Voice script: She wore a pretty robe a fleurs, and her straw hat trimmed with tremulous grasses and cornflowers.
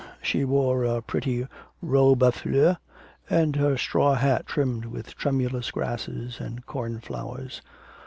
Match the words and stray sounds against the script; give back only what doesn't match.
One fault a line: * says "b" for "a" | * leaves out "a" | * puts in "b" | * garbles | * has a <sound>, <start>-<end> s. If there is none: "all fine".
all fine